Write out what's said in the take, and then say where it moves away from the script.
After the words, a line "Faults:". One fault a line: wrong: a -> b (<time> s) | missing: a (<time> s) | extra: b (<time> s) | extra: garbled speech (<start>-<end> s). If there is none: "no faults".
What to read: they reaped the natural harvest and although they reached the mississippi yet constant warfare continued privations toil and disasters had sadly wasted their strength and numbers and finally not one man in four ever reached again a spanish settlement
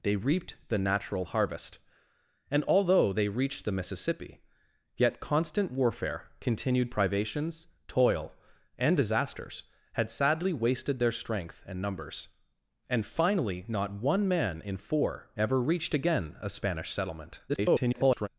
they reaped the natural harvest and although they reached the mississippi yet constant warfare continued privations toil and disasters had sadly wasted their strength and numbers and finally not one man in four ever reached again a spanish settlement [garbled]
Faults:
extra: garbled speech (17.5-18.3 s)